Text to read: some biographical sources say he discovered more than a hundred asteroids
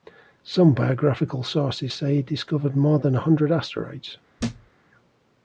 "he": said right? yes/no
yes